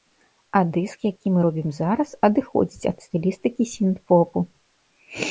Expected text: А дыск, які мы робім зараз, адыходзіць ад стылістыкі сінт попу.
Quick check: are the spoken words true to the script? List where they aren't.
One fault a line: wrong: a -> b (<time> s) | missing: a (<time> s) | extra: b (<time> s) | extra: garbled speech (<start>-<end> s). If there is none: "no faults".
no faults